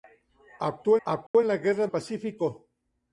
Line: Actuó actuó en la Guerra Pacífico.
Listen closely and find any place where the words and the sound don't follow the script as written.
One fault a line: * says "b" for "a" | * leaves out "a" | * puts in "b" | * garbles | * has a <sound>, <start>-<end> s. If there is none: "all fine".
* has a dropout, 1.3-1.3 s